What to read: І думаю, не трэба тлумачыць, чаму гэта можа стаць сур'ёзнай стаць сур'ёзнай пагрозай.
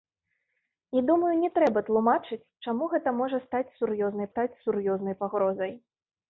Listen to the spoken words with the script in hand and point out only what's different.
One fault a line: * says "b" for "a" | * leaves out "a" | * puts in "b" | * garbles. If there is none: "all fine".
all fine